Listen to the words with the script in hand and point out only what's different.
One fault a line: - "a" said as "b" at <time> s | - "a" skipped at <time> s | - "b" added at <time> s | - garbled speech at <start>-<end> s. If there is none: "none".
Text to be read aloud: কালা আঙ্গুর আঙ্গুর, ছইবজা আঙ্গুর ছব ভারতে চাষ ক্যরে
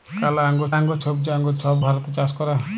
none